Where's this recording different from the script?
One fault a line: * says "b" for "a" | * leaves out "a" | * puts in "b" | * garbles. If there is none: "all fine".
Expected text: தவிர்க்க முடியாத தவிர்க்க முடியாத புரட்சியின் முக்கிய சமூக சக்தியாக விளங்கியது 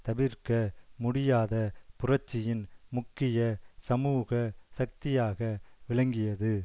* leaves out "தவிர்க்க முடியாத"